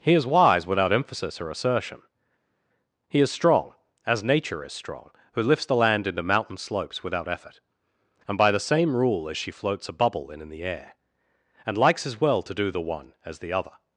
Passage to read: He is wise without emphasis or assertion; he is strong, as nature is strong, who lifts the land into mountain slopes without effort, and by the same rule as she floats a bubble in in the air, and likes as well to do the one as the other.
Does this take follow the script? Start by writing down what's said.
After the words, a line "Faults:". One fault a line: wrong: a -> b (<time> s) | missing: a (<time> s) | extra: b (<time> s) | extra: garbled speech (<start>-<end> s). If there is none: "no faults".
He is wise without emphasis or assertion; he is strong, as nature is strong, who lifts the land into mountain slopes without effort, and by the same rule as she floats a bubble in in the air, and likes as well to do the one as the other.
Faults:
no faults